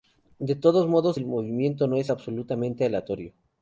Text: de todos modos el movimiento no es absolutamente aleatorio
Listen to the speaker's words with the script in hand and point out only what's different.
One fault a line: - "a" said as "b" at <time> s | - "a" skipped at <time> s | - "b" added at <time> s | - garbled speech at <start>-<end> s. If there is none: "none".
none